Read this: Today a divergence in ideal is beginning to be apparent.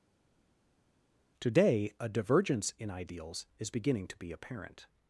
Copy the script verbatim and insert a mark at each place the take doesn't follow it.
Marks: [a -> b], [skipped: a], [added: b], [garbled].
Today a divergence in [ideal -> ideals] is beginning to be apparent.